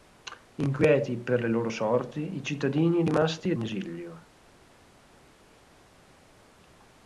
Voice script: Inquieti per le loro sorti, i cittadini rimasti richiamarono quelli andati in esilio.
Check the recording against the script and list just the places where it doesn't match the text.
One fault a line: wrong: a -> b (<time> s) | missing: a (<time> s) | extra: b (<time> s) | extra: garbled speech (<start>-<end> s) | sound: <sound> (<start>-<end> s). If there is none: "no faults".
missing: richiamarono quelli andati (3.5 s)